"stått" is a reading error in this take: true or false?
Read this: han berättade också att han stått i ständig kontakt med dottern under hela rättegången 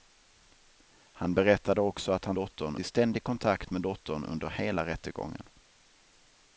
true